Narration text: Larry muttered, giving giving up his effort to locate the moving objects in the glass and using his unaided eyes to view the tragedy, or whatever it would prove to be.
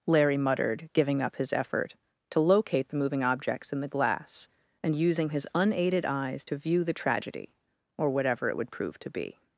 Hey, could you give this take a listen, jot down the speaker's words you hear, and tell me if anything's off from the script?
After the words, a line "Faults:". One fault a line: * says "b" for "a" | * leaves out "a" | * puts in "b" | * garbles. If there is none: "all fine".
Larry muttered, giving up his effort to locate the moving objects in the glass and using his unaided eyes to view the tragedy, or whatever it would prove to be.
Faults:
* leaves out "giving"